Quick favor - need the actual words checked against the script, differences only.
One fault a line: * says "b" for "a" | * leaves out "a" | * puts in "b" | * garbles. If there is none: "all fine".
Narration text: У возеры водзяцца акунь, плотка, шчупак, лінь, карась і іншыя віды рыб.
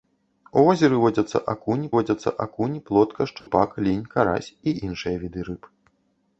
* puts in "водзяцца акунь"